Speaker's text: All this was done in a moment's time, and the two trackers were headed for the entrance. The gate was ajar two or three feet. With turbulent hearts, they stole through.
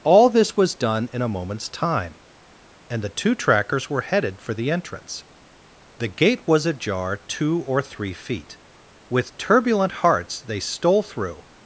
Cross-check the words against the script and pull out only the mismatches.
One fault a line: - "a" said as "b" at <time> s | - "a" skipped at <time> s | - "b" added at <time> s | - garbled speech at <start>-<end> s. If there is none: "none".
none